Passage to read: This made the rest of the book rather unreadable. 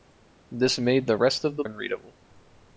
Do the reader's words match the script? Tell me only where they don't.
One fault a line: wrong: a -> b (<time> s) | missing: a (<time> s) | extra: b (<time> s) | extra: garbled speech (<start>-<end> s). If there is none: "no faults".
missing: book rather (1.6 s)